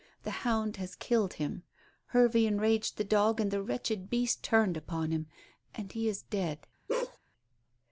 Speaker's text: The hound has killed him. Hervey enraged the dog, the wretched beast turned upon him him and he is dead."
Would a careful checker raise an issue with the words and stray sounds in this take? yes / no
yes